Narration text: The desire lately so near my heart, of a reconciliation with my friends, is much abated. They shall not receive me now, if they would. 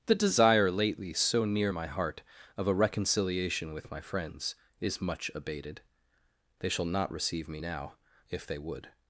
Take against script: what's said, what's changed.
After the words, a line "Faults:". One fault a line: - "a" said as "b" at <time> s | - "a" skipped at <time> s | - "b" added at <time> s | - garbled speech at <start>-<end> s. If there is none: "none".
The desire lately so near my heart, of a reconciliation with my friends, is much abated. They shall not receive me now, if they would.
Faults:
none